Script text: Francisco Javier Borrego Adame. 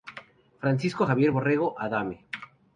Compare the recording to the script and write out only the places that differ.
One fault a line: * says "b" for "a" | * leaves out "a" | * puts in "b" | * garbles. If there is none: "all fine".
all fine